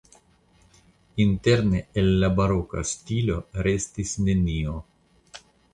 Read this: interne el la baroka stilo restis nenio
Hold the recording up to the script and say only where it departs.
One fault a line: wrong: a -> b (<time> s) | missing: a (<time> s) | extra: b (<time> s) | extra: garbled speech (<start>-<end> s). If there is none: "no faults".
no faults